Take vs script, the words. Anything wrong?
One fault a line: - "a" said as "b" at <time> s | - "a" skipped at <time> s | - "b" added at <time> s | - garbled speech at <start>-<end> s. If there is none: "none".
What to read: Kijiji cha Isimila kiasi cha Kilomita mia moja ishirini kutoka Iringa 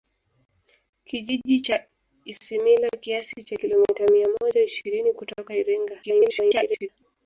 - garbled speech at 6.0-6.9 s